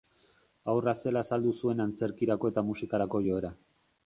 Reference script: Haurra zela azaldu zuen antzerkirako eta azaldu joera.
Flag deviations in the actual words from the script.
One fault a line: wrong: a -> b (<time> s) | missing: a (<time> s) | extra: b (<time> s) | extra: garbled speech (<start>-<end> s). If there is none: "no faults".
wrong: azaldu -> musikarako (2.7 s)